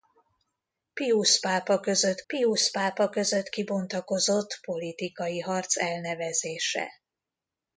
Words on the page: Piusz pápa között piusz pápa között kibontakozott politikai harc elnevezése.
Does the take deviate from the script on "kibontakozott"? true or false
false